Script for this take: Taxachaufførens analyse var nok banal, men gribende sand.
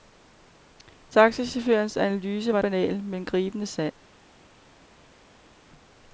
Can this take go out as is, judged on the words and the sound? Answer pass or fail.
fail